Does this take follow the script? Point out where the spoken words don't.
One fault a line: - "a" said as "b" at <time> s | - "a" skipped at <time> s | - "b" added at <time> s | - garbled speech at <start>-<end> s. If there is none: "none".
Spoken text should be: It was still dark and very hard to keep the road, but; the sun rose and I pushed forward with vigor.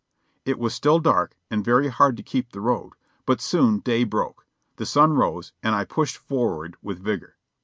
- "soon day broke" added at 3.4 s